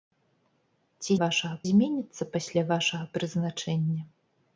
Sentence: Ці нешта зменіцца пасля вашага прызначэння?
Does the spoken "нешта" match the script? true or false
false